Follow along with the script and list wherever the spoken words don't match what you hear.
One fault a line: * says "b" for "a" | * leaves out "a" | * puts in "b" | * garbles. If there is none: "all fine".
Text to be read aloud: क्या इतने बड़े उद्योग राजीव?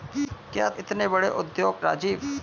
all fine